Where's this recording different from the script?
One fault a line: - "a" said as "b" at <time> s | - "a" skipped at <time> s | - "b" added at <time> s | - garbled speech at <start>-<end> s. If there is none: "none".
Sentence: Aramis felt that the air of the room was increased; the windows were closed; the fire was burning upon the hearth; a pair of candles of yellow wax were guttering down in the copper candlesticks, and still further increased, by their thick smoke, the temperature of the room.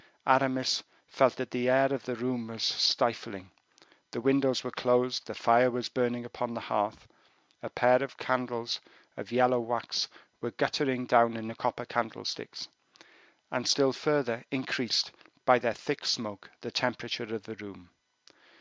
- "increased" said as "stifling" at 2.6 s